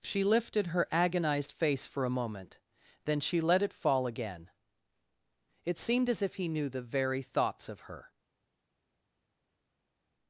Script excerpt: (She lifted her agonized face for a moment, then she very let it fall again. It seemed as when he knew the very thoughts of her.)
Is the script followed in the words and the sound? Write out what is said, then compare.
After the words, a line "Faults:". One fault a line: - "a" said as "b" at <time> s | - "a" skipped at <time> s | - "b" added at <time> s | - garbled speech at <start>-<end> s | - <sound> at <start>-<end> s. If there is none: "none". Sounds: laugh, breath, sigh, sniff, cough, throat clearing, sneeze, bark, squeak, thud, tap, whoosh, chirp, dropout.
(She lifted her agonized face for a moment, then she let it fall again. It seemed as if he knew the very thoughts of her.)
Faults:
- "very" skipped at 3.4 s
- "when" said as "if" at 6.2 s